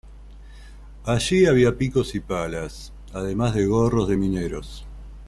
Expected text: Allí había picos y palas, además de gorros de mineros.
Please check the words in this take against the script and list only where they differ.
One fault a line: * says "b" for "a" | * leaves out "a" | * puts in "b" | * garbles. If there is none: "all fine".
all fine